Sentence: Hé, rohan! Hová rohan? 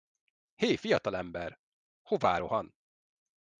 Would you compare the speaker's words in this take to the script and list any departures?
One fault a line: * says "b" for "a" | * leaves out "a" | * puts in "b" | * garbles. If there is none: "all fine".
* says "fiatalember" for "rohan"